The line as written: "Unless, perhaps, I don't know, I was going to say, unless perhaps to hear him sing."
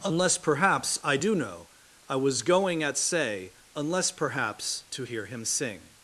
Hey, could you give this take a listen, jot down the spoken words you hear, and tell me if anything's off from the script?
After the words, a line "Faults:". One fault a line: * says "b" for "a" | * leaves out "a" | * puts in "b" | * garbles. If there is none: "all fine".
"Unless, perhaps, I do know, I was going at say, unless perhaps to hear him sing."
Faults:
* says "do" for "don't"
* says "at" for "to"